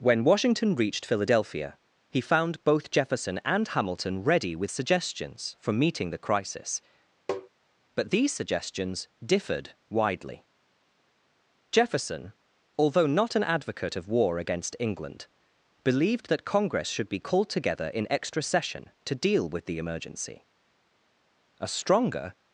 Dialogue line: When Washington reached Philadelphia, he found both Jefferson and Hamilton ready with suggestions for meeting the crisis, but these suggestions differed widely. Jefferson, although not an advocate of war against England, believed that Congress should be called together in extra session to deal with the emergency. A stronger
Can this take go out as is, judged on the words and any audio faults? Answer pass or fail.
fail